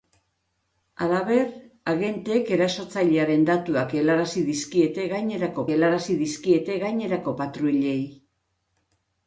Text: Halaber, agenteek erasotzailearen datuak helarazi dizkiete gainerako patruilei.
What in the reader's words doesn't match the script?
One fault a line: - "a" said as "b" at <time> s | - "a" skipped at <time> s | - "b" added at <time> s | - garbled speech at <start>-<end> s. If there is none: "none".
- "helarazi dizkiete gainerako" added at 5.7 s